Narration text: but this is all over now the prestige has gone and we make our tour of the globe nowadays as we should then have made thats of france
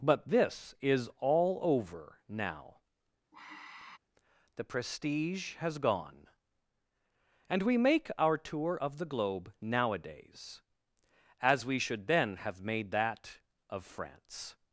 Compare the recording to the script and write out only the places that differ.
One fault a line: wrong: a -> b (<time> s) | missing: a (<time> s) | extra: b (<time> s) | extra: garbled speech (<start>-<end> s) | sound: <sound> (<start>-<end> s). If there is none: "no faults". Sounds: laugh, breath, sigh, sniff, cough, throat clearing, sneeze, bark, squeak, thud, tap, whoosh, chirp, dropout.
sound: sigh (3.3-4.0 s)
wrong: thats -> that (12.9 s)